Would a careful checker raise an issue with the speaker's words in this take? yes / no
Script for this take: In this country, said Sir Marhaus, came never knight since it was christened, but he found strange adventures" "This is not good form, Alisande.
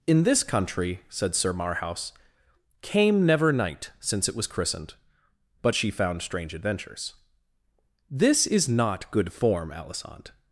yes